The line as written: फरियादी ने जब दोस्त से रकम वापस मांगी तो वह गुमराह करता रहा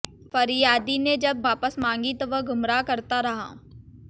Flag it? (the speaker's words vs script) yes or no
yes